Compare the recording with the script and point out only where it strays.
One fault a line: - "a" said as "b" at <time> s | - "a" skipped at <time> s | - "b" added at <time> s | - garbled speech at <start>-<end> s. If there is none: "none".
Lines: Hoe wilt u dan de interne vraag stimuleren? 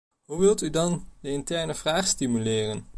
none